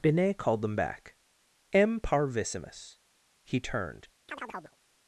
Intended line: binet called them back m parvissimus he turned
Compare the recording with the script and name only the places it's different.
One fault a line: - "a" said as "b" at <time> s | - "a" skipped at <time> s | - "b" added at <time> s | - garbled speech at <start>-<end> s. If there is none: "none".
none